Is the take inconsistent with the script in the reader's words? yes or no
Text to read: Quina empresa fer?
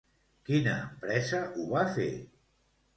yes